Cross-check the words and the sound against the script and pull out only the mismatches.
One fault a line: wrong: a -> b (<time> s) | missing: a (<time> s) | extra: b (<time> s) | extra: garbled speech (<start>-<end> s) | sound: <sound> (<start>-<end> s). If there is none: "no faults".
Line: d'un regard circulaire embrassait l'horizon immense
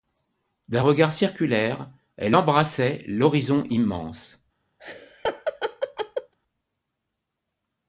extra: elle (2.2 s)
sound: laugh (4.8-6.3 s)